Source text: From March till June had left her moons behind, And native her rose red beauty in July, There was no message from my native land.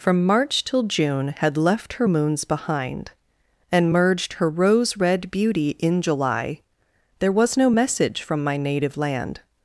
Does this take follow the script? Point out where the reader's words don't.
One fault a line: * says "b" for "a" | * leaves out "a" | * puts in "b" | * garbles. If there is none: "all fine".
* says "merged" for "native"